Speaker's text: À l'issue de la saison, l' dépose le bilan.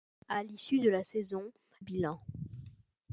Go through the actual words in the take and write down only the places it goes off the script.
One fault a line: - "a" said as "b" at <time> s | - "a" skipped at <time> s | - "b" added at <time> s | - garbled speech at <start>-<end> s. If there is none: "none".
- "l dépose le" skipped at 1.5 s